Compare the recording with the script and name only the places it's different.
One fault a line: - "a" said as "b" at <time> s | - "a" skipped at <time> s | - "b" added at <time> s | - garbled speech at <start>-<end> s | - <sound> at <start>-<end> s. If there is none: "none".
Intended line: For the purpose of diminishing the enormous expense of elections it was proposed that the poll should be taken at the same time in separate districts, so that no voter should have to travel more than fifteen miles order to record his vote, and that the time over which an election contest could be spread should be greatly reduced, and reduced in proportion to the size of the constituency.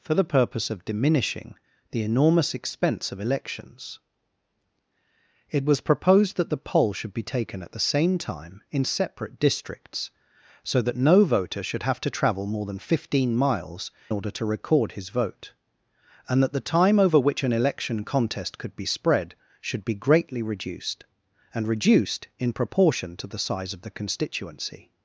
none